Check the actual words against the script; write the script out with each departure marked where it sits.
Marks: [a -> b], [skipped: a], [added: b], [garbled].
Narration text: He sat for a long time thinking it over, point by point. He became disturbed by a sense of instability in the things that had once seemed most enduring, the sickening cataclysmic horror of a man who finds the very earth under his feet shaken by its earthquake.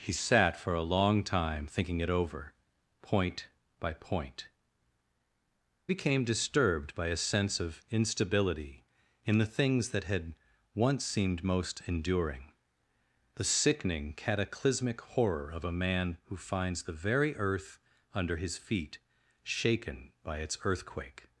He sat for a long time thinking it over, point by point. [skipped: He] became disturbed by a sense of instability in the things that had once seemed most enduring, the sickening cataclysmic horror of a man who finds the very earth under his feet shaken by its earthquake.